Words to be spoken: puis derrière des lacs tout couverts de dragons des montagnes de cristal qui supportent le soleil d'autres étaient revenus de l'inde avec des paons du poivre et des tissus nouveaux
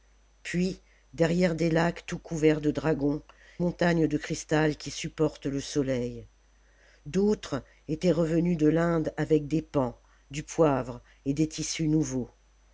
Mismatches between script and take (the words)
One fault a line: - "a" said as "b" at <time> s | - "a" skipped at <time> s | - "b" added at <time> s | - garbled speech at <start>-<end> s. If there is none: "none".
- "des" skipped at 3.2 s